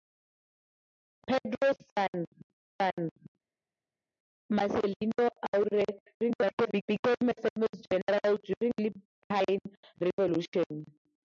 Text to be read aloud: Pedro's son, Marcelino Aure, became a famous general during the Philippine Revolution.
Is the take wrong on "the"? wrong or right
wrong